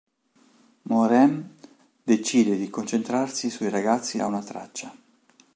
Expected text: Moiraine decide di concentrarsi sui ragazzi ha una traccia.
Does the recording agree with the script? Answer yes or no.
yes